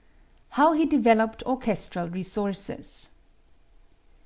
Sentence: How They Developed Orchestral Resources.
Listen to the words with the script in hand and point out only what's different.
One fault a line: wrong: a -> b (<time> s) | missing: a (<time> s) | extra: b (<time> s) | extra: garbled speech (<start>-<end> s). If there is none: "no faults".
wrong: They -> He (0.7 s)